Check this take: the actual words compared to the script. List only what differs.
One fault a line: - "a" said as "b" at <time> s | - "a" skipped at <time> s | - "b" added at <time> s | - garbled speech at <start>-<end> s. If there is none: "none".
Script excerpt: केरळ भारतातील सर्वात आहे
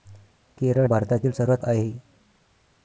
none